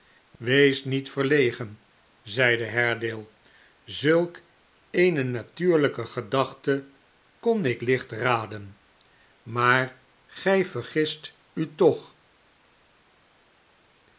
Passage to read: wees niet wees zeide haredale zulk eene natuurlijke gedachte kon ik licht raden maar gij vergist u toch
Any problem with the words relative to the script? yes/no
yes